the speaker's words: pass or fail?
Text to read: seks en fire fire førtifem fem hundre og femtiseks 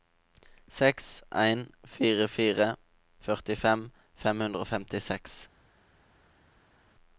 pass